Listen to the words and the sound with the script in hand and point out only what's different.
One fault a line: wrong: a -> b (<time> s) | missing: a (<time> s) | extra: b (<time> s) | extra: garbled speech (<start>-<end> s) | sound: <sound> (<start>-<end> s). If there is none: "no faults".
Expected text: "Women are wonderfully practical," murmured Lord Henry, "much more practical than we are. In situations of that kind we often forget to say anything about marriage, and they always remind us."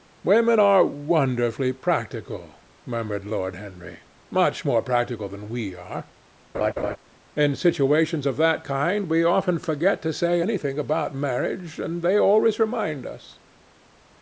sound: laugh (6.5-7.0 s)